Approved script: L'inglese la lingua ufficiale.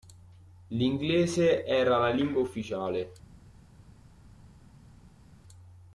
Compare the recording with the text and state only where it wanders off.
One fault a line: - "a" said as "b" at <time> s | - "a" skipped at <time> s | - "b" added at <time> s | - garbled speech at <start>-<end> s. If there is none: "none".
- "era" added at 1.6 s